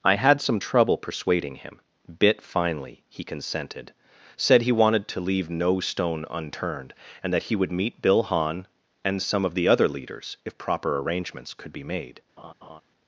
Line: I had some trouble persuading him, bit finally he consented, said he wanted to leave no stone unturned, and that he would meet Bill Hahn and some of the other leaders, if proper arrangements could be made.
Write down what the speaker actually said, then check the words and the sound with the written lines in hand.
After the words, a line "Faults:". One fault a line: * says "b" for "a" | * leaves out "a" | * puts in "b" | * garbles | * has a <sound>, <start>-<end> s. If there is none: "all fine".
I had some trouble persuading him, bit finally he consented, said he wanted to leave no stone unturned, and that he would meet Bill Hahn and some of the other leaders, if proper arrangements could be made.
Faults:
* has a laugh, 12.4-12.8 s